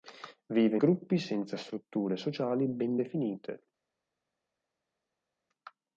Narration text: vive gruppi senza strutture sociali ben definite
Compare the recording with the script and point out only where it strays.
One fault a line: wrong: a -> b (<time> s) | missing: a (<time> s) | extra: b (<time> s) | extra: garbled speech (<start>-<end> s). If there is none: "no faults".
no faults